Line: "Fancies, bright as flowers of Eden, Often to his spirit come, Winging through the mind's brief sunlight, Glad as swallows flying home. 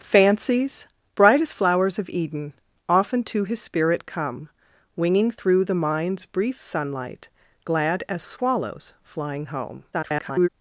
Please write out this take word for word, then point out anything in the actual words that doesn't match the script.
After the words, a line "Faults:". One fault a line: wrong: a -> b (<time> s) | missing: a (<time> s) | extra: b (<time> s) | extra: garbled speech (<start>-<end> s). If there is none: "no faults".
"Fancies, bright as flowers of Eden, Often to his spirit come, Winging through the mind's brief sunlight, Glad as swallows flying home. [garbled]
Faults:
extra: garbled speech (9.9-10.5 s)